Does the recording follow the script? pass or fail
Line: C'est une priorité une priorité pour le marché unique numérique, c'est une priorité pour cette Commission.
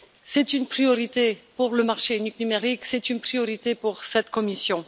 fail